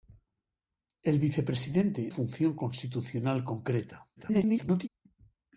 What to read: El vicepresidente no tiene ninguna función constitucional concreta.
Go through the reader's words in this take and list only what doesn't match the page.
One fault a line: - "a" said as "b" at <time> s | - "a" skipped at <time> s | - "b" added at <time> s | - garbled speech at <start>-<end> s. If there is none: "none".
- "no tiene ninguna" skipped at 2.1 s
- garbled speech at 4.2-4.9 s